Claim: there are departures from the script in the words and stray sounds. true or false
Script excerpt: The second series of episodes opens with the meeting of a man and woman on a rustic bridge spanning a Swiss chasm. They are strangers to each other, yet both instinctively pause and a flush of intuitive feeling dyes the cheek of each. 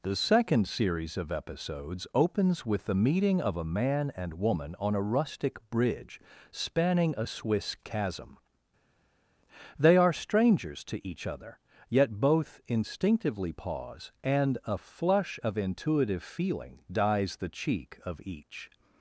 false